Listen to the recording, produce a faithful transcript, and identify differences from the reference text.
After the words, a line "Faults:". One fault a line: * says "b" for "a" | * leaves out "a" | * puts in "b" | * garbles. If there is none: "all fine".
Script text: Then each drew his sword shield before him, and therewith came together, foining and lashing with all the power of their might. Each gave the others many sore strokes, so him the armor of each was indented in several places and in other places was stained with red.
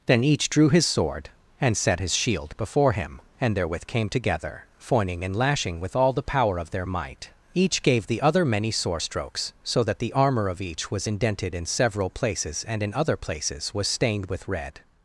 Then each drew his sword and set his shield before him, and therewith came together, foining and lashing with all the power of their might. Each gave the other many sore strokes, so that the armor of each was indented in several places and in other places was stained with red.
Faults:
* puts in "and set his"
* says "other" for "others"
* says "that" for "him"